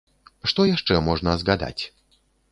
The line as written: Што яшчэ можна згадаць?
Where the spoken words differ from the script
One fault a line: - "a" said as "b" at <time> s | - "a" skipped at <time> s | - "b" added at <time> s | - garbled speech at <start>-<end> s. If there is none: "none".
none